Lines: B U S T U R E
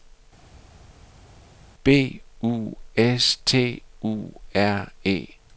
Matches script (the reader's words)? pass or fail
pass